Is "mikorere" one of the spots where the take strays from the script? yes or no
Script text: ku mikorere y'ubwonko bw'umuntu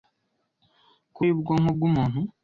yes